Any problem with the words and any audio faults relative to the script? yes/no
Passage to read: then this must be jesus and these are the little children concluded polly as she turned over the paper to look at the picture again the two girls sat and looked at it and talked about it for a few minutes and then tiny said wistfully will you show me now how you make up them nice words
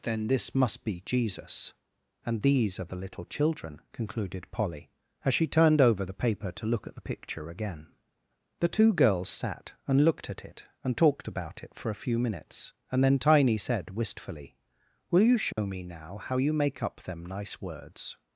yes